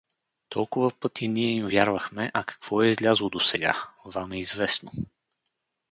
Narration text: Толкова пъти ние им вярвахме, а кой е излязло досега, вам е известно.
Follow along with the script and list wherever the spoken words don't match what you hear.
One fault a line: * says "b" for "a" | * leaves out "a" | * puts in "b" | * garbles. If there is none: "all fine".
* says "какво" for "кой"